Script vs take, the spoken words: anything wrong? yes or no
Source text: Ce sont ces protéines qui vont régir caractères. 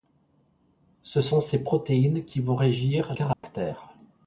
no